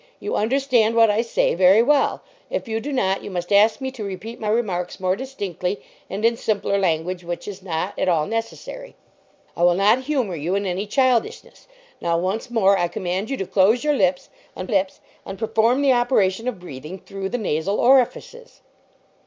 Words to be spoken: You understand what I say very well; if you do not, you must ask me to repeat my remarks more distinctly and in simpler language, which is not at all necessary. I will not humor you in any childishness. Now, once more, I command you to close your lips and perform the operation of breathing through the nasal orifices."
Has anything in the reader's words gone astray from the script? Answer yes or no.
yes